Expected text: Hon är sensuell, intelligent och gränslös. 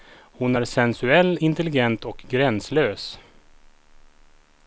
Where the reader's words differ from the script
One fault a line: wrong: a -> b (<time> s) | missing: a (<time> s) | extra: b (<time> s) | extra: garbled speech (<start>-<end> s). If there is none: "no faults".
no faults